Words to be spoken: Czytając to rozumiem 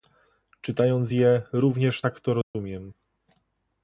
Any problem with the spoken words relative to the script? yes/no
yes